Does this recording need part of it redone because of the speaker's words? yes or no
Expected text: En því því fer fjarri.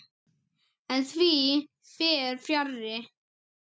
yes